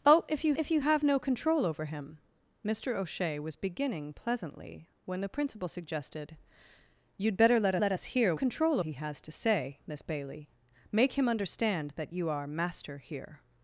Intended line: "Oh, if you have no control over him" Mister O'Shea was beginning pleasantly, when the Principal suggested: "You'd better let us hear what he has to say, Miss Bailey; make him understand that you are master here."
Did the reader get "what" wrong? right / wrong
wrong